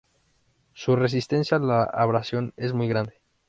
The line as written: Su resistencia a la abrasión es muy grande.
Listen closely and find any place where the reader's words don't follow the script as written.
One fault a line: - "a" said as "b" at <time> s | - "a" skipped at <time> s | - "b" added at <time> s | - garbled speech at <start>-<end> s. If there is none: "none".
none